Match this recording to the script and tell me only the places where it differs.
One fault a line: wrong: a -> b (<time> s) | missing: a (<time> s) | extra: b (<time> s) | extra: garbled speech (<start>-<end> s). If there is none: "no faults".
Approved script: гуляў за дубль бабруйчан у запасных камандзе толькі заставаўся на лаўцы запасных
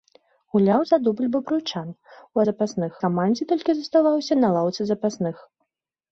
no faults